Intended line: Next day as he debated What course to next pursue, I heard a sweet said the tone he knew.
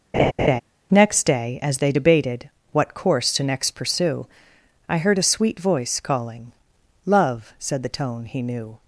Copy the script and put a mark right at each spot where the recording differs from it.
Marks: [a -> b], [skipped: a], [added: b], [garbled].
Next day as [he -> they] debated What course to next pursue, I heard a sweet [added: voice calling Love] said the tone he knew.